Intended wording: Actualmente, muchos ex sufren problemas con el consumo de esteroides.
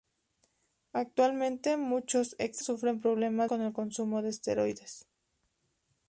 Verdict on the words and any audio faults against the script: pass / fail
pass